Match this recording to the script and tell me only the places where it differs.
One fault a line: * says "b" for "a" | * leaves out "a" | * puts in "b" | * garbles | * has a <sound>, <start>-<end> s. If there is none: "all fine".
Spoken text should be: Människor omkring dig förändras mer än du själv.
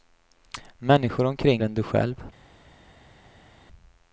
* leaves out "dig förändras mer"